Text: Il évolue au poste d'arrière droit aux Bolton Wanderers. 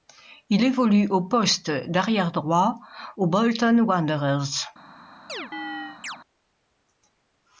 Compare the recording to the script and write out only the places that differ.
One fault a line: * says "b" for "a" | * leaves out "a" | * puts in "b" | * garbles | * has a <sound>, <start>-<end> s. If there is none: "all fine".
* has a chirp, 5.3-6.2 s